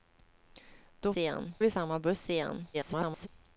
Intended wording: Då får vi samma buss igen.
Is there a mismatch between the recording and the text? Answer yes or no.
yes